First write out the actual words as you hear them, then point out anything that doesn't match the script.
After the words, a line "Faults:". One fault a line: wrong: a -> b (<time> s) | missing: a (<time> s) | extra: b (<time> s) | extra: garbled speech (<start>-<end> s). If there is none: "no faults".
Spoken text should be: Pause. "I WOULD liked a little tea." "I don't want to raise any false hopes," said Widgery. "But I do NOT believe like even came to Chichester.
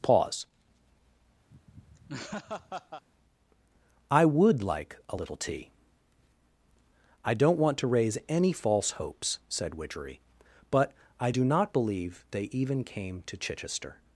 Pause. "I WOULD like a little tea." "I don't want to raise any false hopes," said Widgery. "But I do NOT believe they even came to Chichester.
Faults:
wrong: liked -> like (4.6 s)
wrong: like -> they (12.3 s)